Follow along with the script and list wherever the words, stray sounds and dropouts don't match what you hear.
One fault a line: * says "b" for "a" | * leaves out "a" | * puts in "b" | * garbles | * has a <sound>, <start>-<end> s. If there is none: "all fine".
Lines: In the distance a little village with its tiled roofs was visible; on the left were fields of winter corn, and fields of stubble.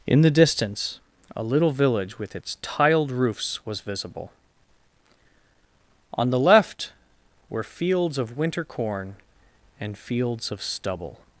all fine